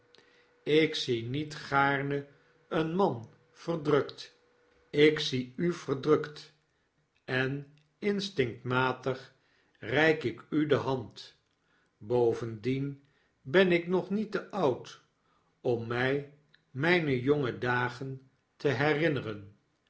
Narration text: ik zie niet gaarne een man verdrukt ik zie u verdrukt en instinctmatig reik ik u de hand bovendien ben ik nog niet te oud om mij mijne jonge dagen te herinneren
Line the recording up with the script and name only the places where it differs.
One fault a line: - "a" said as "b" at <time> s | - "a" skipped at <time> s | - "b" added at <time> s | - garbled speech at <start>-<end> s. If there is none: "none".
none